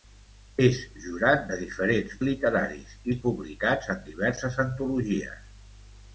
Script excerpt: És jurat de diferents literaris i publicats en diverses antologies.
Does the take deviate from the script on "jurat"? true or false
false